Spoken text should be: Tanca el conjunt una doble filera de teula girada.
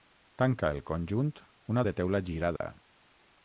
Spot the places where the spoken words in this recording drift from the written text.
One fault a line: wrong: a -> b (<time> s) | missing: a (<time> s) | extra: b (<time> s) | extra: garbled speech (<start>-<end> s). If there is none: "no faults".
missing: doble filera (1.8 s)